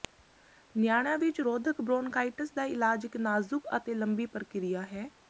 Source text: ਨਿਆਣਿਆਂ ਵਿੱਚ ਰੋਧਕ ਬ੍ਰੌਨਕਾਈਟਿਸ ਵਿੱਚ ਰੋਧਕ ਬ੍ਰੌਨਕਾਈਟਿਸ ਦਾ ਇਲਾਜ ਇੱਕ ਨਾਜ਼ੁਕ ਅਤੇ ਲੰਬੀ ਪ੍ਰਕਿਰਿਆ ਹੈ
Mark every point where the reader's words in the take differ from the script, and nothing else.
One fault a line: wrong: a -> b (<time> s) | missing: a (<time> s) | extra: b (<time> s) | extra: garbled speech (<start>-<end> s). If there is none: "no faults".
missing: ਵਿੱਚ ਰੋਧਕ ਬ੍ਰੌਨਕਾਈਟਿਸ (2.5 s)